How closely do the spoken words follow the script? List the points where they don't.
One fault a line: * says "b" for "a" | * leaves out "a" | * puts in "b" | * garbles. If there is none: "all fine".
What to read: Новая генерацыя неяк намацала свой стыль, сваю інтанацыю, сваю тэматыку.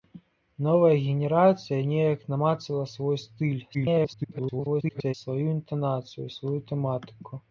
* garbles